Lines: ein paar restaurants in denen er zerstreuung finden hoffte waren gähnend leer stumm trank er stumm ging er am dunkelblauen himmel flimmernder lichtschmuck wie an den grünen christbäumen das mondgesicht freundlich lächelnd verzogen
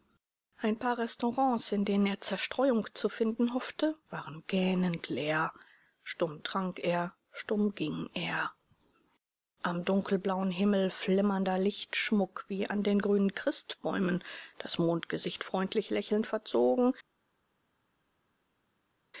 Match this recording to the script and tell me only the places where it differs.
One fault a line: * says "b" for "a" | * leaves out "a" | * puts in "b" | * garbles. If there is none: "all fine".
* puts in "zu"